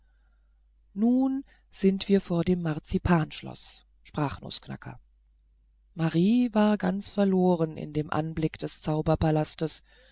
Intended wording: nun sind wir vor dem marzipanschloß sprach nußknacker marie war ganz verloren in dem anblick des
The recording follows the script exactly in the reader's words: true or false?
true